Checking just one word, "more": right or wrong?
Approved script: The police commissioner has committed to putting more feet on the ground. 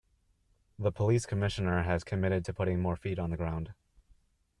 right